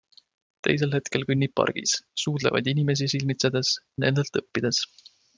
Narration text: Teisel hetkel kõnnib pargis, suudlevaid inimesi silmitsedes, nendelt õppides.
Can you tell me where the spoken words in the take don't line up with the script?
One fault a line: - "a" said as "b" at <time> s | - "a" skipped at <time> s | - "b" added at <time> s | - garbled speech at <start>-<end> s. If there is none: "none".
none